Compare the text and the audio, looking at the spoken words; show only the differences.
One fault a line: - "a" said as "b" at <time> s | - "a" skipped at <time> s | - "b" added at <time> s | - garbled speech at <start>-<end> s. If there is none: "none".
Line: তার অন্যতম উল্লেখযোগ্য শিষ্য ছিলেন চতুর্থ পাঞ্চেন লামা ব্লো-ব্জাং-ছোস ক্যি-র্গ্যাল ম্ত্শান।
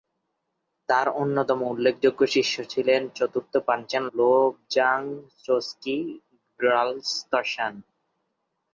- "লামা" skipped at 4.0 s